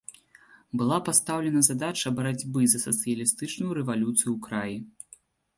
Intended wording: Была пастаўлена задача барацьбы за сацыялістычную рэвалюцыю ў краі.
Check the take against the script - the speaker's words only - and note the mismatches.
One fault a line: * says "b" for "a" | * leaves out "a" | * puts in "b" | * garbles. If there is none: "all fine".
all fine